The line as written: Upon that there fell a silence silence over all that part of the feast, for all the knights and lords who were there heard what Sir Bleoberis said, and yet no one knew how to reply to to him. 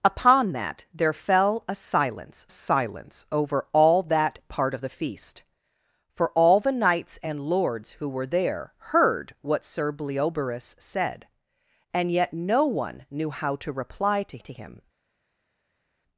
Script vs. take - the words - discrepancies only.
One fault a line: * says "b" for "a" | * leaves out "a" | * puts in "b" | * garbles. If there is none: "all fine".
all fine